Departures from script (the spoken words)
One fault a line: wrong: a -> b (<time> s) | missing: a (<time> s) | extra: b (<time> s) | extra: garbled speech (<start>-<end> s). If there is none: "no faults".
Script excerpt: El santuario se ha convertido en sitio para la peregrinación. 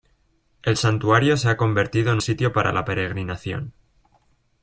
no faults